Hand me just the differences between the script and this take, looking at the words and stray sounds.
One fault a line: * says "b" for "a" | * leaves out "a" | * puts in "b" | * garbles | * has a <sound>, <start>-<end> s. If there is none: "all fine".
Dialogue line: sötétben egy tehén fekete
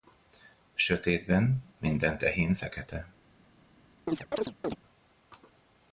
* says "minden" for "egy"
* has a chirp, 4.1-4.8 s